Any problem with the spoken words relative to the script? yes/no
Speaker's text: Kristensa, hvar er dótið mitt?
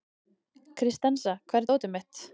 no